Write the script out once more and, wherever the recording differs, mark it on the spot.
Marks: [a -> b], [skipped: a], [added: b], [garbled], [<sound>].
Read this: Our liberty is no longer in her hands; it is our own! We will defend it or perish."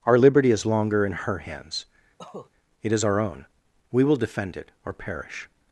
Our liberty is [skipped: no] longer in her hands; [cough] it is our own! We will defend it or perish."